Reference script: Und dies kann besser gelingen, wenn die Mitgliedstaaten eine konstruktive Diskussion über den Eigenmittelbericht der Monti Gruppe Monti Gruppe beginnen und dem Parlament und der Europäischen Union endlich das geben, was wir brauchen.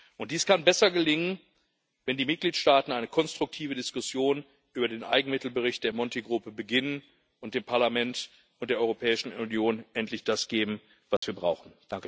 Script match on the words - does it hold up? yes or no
no